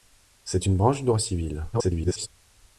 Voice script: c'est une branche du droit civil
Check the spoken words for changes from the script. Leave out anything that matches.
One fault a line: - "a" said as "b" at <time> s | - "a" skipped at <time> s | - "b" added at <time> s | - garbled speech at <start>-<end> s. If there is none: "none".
- garbled speech at 1.7-2.3 s